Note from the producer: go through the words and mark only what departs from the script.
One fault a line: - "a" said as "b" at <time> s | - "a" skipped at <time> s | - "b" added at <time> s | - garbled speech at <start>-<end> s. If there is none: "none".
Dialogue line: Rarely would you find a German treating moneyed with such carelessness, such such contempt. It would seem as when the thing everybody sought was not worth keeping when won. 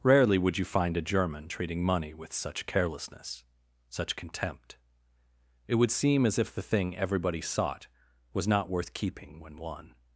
- "moneyed" said as "money" at 1.8 s
- "such" skipped at 4.2 s
- "when" said as "if" at 6.4 s